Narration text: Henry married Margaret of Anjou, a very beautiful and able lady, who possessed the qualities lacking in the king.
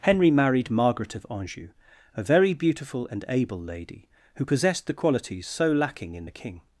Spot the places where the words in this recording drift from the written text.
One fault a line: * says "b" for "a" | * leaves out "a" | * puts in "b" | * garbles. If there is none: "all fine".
* puts in "so"